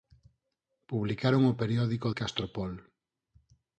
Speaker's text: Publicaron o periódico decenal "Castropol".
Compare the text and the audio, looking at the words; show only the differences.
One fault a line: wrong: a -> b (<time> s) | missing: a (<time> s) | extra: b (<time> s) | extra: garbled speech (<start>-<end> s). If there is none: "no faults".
missing: decenal (2.1 s)